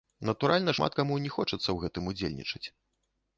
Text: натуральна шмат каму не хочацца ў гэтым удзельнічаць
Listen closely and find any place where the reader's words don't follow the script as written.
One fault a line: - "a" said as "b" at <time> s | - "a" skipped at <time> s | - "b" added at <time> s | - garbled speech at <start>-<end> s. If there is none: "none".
none